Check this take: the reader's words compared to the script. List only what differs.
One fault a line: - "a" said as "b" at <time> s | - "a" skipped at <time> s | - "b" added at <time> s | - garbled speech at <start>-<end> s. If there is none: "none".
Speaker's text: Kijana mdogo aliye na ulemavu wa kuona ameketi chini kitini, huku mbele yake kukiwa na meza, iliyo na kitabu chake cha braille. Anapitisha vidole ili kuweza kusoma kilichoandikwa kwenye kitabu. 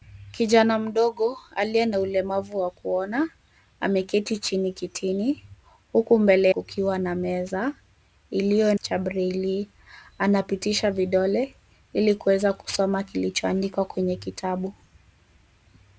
- "yake" skipped at 6.5 s
- "na kitabu chake" skipped at 8.7 s